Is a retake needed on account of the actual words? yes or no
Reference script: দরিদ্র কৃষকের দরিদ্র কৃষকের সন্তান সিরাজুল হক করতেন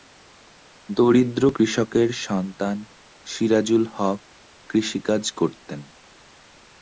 yes